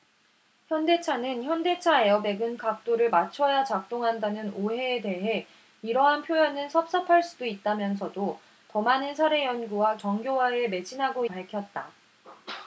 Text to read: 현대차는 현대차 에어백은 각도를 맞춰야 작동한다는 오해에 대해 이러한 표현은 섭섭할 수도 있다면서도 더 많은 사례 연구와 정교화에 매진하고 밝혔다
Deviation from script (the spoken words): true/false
false